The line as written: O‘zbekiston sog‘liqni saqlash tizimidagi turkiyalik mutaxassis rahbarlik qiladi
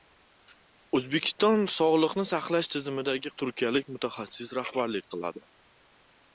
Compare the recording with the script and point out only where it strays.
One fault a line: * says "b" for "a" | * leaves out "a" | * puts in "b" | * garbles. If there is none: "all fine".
all fine